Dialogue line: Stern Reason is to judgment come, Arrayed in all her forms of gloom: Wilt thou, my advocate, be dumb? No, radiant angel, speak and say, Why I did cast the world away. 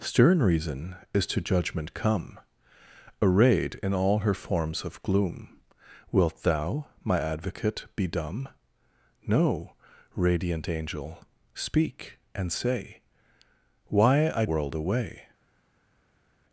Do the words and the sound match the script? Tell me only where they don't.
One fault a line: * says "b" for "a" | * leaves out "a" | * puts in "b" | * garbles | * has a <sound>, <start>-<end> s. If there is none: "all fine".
* leaves out "did cast the"